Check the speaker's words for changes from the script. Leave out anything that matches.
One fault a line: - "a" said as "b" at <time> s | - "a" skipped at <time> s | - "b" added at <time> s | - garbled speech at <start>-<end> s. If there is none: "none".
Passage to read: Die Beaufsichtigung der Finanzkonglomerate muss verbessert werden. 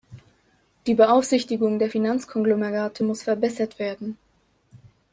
none